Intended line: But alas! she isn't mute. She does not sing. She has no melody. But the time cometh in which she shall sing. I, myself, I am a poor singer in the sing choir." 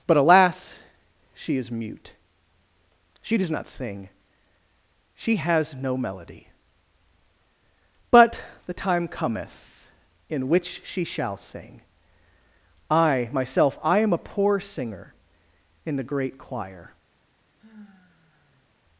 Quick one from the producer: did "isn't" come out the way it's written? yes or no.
no